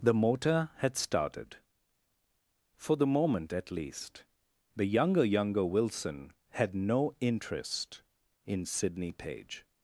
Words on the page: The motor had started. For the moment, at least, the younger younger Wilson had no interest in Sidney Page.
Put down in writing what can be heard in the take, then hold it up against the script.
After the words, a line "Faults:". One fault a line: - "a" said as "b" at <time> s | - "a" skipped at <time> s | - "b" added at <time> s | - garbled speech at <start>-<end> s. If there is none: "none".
The motor had started. For the moment, at least, the younger younger Wilson had no interest in Sidney Page.
Faults:
none